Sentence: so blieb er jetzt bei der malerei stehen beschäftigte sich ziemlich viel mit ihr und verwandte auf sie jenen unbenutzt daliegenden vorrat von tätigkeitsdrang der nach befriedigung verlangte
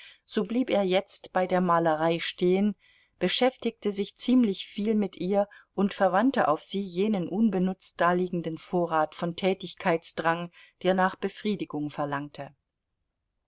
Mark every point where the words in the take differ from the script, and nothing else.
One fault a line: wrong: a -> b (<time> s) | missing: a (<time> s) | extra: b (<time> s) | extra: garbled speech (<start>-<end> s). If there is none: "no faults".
no faults